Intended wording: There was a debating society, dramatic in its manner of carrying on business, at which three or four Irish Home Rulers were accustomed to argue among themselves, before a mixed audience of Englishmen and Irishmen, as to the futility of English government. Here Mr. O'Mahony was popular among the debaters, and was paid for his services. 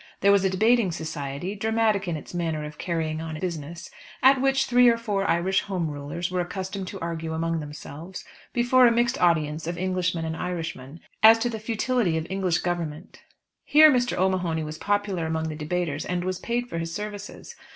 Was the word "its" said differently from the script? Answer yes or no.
no